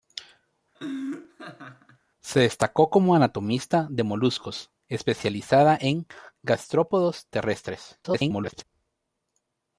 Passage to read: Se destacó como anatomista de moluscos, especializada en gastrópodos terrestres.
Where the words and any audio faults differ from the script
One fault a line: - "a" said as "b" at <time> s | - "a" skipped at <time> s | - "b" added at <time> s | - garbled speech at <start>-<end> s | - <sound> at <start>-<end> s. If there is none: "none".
- laugh at 0.7-2.0 s
- garbled speech at 8.0-8.6 s